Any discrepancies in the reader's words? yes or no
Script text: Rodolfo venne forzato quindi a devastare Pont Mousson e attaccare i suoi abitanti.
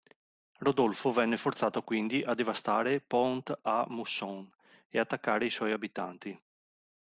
yes